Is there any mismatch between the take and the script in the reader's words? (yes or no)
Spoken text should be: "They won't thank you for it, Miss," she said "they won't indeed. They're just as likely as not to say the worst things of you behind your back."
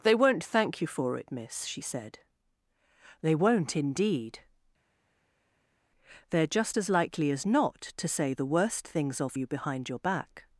no